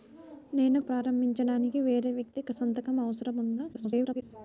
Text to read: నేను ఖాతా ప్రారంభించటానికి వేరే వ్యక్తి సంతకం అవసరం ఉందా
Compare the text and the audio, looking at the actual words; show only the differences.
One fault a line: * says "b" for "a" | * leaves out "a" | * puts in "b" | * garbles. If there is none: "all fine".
* leaves out "ఖాతా"
* garbles